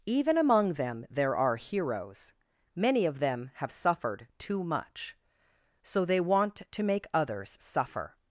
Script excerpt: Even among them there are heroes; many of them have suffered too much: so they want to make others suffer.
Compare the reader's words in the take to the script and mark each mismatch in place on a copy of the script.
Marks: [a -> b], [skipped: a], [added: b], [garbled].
Even among them there are heroes; many of them have suffered too much: so they want to make others suffer.